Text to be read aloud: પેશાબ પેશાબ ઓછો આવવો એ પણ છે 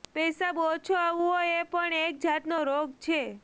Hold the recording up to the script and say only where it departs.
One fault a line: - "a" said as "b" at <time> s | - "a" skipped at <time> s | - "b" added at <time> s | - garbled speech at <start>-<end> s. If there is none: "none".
- "પેશાબ" skipped at 0.6 s
- "એક જાતનો રોગ" added at 2.0 s